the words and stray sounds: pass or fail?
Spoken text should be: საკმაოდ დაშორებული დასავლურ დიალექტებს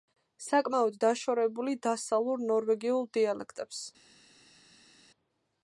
fail